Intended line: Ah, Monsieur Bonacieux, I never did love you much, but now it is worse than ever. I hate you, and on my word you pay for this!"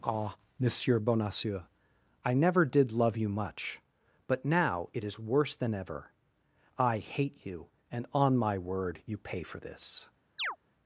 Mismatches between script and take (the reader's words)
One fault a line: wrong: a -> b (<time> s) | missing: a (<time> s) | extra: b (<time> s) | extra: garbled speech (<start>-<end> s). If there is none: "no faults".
no faults